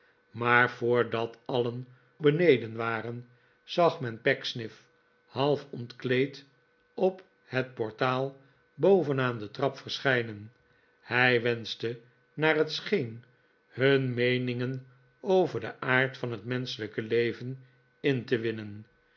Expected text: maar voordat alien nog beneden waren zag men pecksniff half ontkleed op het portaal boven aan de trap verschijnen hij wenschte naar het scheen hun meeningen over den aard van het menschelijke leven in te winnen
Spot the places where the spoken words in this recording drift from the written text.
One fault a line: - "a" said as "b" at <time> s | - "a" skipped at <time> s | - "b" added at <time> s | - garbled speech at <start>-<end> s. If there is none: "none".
- "nog" skipped at 1.9 s